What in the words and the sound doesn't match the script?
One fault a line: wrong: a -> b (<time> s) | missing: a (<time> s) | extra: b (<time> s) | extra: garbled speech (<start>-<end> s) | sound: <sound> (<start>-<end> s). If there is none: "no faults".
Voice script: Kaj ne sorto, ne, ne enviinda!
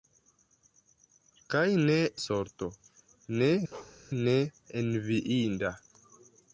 sound: bark (3.7-4.0 s)